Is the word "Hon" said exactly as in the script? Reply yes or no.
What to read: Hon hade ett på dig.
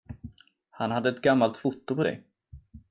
no